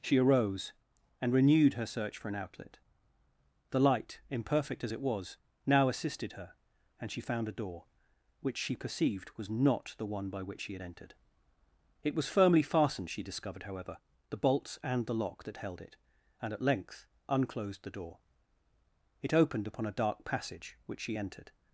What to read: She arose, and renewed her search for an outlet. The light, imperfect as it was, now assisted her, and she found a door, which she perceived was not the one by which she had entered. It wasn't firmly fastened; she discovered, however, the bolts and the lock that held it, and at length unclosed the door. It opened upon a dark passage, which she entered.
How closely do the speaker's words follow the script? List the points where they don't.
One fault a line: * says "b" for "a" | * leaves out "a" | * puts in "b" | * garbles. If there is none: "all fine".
* says "was" for "wasn't"